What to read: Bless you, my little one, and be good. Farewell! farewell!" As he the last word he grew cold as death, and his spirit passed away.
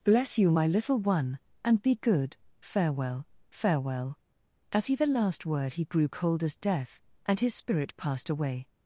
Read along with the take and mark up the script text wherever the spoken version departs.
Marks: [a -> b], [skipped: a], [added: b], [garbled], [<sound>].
Bless you, my little one, and be good. Farewell! farewell!" As he the last word he grew cold as death, and his spirit passed away.